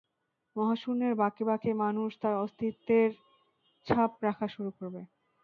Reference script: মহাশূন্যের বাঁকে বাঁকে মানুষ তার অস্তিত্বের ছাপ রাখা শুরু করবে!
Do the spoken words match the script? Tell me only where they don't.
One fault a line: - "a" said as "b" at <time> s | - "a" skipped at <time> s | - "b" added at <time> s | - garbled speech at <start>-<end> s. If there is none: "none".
none